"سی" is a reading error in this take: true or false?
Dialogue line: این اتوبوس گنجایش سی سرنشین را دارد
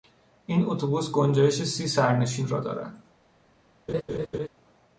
false